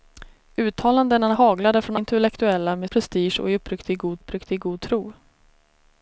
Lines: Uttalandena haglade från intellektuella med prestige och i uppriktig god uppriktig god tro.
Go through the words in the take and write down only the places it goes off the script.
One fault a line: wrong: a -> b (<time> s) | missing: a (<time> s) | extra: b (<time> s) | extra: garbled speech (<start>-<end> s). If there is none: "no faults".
no faults